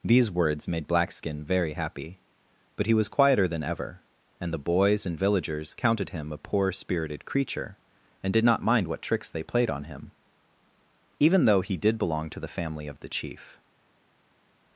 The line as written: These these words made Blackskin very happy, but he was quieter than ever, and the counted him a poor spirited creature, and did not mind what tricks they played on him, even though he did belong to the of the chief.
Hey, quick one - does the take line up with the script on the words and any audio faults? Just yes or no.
no